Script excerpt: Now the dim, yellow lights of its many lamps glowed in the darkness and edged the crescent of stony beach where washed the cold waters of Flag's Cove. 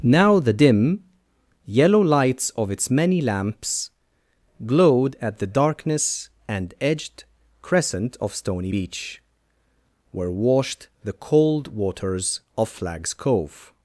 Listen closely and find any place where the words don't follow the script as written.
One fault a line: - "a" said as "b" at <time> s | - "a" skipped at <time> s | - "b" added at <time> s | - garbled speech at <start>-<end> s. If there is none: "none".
- "in" said as "at" at 5.2 s
- "the" skipped at 7.2 s